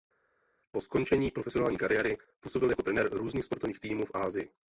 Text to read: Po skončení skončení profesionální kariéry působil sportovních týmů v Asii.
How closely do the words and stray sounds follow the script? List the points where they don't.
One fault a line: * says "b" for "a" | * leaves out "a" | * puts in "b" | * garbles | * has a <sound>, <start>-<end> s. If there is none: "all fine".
* leaves out "skončení"
* puts in "jako trenér různých"